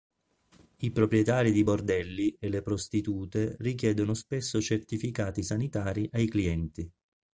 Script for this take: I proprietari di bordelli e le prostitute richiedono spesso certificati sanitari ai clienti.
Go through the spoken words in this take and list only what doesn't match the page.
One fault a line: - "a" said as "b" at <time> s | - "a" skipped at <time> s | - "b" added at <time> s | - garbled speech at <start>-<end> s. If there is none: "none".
none